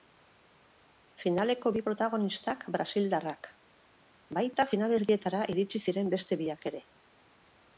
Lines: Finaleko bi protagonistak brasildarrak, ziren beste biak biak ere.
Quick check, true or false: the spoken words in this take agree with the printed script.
false